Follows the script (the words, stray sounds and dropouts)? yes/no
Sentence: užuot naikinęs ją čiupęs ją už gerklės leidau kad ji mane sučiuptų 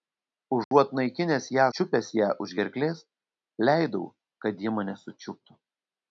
no